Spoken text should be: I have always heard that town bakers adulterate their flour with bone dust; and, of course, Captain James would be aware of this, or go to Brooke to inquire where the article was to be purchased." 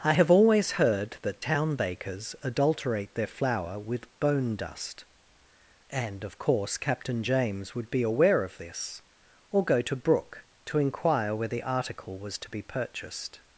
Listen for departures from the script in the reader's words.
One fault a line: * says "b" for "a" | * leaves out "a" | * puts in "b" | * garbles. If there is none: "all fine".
all fine